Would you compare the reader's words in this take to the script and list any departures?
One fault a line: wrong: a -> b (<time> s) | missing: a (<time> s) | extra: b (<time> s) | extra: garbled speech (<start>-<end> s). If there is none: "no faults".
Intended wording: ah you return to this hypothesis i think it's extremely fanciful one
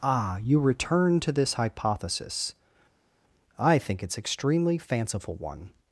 no faults